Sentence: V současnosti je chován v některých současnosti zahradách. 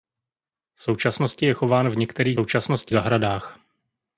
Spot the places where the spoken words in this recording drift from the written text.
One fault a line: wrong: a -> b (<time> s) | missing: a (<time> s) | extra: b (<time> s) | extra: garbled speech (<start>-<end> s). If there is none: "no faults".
no faults